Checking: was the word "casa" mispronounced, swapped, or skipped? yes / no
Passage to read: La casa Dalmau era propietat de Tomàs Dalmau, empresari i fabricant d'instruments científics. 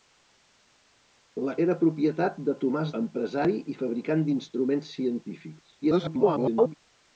yes